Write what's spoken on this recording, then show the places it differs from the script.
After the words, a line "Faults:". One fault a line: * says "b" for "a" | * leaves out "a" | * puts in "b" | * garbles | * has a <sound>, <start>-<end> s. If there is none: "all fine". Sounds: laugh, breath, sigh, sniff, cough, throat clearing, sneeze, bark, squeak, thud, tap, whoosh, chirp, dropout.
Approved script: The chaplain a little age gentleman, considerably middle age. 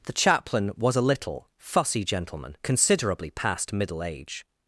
The chaplain was a little fussy gentleman, considerably past middle age.
Faults:
* puts in "was"
* says "fussy" for "age"
* puts in "past"